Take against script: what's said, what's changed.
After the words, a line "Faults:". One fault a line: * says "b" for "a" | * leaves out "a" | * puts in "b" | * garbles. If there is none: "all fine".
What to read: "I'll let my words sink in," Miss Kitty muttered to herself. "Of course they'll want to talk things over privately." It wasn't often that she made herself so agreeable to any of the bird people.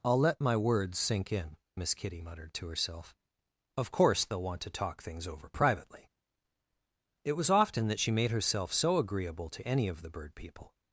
"I'll let my words sink in," Miss Kitty muttered to herself. "Of course they'll want to talk things over privately." It was often that she made herself so agreeable to any of the bird people.
Faults:
* says "was" for "wasn't"